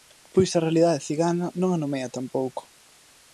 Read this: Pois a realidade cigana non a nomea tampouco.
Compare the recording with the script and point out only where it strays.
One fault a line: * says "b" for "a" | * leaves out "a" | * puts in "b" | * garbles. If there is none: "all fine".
all fine